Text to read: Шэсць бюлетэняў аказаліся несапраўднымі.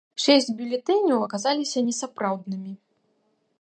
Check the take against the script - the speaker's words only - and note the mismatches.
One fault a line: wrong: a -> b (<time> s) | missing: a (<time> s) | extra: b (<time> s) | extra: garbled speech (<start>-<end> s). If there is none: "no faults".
no faults